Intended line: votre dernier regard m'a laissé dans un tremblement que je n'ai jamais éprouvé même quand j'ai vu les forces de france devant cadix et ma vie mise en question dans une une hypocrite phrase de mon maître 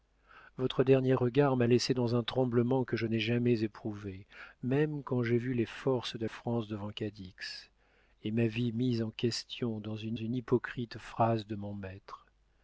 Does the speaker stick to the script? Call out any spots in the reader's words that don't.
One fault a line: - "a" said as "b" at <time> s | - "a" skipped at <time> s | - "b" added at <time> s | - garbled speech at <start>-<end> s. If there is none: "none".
none